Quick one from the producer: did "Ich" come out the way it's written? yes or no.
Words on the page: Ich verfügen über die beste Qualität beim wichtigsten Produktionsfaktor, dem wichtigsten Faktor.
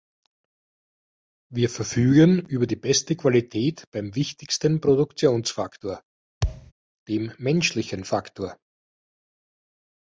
no